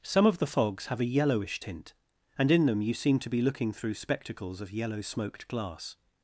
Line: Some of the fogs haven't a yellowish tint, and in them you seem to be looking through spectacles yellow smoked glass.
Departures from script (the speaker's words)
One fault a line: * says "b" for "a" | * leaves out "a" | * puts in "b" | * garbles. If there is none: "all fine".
* says "have" for "haven't"
* puts in "of"